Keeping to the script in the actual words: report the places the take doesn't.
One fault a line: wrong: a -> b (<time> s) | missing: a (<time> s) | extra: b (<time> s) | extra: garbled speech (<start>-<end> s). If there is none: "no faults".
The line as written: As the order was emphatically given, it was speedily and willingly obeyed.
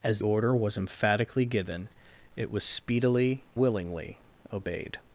missing: the (0.2 s)
missing: and (3.4 s)